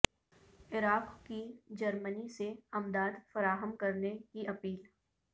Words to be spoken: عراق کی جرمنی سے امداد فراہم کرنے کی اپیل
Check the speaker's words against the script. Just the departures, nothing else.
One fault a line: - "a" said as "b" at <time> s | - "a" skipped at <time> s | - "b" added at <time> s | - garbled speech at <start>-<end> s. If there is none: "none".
none